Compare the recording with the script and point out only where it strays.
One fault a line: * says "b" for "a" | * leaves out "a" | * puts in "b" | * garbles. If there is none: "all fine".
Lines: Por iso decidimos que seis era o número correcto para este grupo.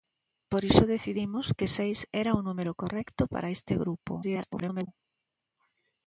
* garbles